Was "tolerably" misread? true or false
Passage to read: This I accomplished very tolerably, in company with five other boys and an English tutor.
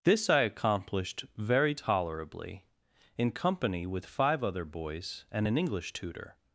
false